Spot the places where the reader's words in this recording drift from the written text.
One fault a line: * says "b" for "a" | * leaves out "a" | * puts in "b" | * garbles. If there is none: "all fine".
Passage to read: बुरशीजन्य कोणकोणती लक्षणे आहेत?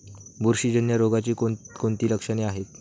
* puts in "रोगाची"